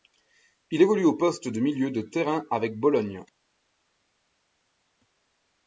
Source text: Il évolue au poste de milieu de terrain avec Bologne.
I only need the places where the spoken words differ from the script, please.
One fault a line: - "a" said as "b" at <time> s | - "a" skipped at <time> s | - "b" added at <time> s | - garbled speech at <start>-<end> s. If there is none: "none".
none